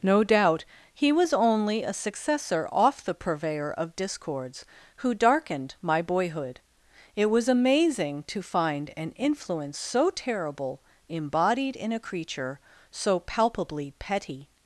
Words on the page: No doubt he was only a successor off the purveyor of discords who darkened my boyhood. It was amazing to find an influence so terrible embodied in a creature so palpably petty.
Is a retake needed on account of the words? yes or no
no